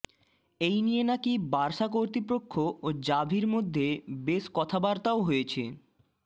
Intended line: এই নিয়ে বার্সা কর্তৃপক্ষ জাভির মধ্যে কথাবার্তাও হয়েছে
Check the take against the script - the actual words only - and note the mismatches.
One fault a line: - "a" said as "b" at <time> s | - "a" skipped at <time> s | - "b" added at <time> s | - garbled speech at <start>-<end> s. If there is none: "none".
- "নাকি" added at 1.0 s
- "ও" added at 2.8 s
- "বেশ" added at 4.2 s